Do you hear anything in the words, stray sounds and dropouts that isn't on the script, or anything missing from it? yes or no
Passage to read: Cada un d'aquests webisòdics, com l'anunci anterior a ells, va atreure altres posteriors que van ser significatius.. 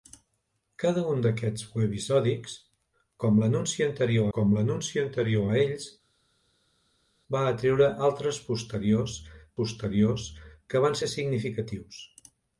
yes